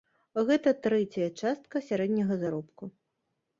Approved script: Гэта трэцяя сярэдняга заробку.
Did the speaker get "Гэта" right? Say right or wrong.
right